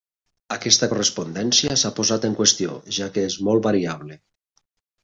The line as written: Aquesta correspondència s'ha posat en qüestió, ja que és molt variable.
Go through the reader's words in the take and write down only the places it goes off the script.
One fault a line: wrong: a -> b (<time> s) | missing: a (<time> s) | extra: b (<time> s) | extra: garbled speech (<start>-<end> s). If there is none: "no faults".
no faults